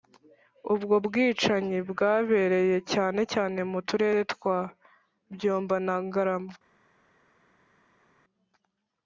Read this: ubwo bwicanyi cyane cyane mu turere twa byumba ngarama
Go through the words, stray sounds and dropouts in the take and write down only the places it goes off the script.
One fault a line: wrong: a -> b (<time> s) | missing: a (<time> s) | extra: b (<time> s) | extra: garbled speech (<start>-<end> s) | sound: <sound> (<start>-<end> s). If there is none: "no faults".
extra: bwabereye (1.9 s)
extra: na (5.9 s)